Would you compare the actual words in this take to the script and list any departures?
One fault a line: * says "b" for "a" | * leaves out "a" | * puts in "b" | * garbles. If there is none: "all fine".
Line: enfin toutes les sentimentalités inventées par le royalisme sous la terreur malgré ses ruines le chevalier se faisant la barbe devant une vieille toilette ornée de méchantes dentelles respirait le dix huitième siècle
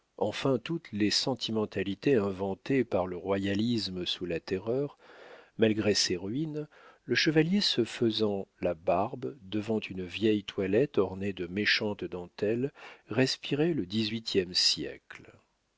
all fine